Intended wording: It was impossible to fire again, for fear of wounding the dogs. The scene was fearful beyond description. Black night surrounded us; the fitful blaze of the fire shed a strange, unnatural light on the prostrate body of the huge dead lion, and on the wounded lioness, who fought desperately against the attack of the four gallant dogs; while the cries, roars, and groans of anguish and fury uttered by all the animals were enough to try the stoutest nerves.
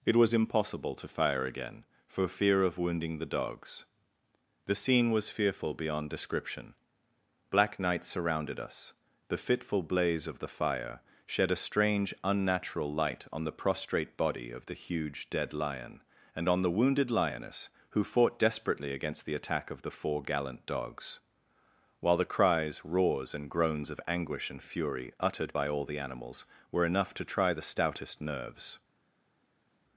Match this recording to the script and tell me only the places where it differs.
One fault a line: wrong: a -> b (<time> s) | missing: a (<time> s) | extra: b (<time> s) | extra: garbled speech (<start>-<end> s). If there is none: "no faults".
no faults